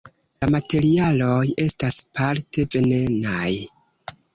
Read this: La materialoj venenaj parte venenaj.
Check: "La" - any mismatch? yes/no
no